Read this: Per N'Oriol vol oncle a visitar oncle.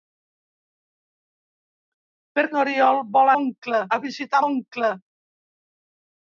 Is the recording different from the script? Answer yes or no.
no